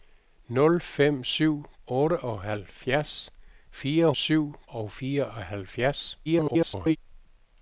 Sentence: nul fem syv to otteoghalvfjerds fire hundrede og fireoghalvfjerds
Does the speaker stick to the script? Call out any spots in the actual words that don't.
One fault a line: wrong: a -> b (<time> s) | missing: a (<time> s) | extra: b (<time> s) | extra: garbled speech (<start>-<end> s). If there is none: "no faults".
missing: to (1.6 s)
wrong: hundrede -> syv (4.1 s)
extra: garbled speech (6.3-7.0 s)